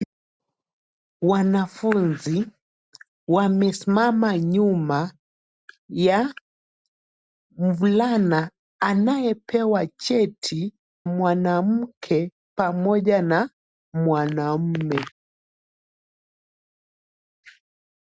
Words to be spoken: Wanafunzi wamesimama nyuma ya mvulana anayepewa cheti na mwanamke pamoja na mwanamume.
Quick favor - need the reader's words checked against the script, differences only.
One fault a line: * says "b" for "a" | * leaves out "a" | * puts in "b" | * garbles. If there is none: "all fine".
* leaves out "na"